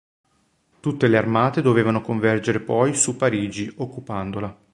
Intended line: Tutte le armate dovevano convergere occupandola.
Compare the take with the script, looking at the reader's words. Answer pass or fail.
fail